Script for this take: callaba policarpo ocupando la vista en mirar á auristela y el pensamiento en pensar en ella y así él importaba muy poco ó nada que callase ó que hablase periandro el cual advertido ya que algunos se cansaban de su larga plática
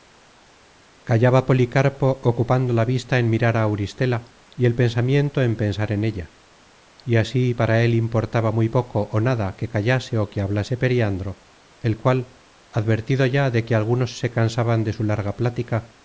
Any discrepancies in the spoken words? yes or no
yes